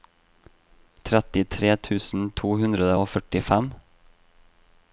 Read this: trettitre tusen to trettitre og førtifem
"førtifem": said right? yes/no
yes